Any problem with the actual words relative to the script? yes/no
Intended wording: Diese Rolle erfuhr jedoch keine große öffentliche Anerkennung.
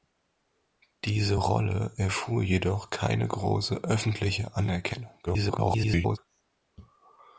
yes